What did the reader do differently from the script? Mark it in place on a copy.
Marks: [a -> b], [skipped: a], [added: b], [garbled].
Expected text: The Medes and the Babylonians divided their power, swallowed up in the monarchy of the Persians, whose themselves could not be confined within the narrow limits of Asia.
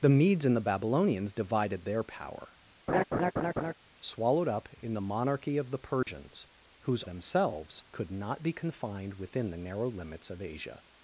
The Medes and the Babylonians divided their power, swallowed up in the monarchy of the Persians, whose themselves could not be confined within the narrow limits of Asia.